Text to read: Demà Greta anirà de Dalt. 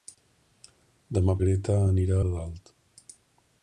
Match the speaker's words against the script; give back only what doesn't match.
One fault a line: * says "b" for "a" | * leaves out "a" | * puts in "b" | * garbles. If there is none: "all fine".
all fine